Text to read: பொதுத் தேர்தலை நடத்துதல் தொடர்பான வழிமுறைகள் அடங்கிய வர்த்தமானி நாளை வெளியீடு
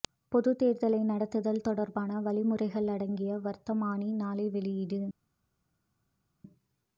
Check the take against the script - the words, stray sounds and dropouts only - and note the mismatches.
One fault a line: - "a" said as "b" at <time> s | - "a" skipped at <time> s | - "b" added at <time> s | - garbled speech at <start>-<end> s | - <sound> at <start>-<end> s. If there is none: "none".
none